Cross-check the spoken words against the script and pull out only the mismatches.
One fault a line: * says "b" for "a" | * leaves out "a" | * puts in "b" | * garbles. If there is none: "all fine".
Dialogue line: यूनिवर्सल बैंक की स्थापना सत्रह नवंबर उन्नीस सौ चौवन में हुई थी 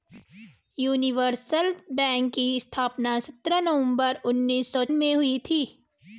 * leaves out "चौवन"